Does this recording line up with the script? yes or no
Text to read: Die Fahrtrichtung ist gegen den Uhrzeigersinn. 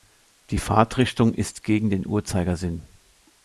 yes